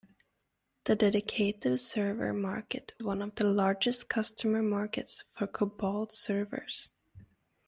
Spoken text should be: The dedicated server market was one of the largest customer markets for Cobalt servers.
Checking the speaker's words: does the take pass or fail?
fail